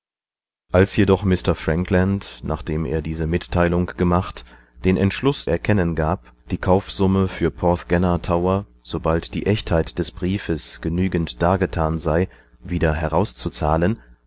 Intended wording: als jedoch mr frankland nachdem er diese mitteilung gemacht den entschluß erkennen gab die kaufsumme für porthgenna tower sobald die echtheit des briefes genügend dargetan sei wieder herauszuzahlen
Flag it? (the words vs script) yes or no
no